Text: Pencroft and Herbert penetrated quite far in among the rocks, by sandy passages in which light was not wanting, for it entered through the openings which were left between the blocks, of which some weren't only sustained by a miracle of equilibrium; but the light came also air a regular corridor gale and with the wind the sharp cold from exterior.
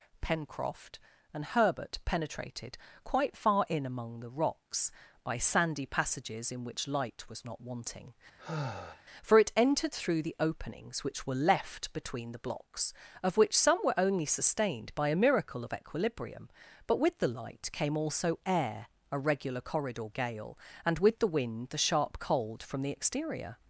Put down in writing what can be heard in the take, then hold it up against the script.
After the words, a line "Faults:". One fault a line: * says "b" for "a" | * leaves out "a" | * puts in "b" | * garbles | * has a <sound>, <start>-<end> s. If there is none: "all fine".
Pencroft and Herbert penetrated quite far in among the rocks, by sandy passages in which light was not wanting, for it entered through the openings which were left between the blocks, of which some were only sustained by a miracle of equilibrium; but with the light came also air a regular corridor gale and with the wind the sharp cold from the exterior.
Faults:
* has a sigh, 8.4-9.0 s
* says "were" for "weren't"
* puts in "with"
* puts in "the"